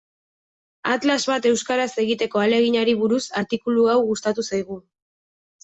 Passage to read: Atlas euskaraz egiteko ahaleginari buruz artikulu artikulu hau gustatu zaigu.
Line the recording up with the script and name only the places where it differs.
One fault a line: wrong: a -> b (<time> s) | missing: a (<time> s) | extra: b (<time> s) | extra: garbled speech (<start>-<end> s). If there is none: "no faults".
extra: bat (1.3 s)
missing: artikulu (3.9 s)